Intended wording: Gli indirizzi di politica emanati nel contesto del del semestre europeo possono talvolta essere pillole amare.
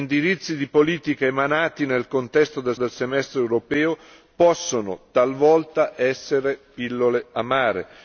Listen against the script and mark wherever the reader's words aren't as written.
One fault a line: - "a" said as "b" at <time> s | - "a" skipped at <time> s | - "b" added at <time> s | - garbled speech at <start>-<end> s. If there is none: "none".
none